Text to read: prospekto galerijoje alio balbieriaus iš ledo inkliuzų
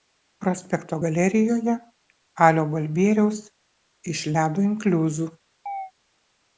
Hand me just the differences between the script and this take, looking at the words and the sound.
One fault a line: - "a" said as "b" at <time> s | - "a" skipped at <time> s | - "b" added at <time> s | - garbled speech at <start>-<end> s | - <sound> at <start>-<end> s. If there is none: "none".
- chirp at 5.7-5.9 s